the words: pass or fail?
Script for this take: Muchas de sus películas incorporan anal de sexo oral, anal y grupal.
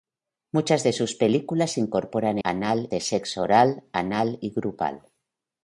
pass